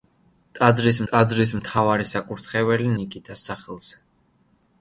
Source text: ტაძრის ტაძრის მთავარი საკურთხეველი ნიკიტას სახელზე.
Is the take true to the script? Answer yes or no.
yes